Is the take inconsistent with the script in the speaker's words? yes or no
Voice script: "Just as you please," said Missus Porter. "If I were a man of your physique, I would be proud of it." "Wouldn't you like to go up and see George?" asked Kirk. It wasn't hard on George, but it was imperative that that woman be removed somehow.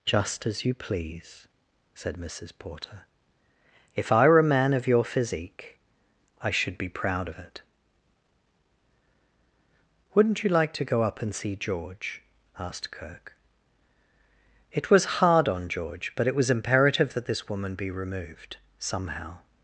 yes